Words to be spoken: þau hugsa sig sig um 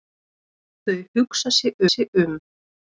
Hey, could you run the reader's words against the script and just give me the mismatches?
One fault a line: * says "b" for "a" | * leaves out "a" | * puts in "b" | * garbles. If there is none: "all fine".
all fine